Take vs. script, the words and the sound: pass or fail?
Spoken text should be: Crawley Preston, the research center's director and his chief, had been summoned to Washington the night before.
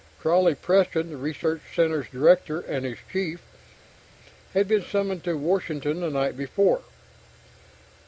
pass